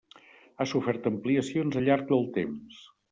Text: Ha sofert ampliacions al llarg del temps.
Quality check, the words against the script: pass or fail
pass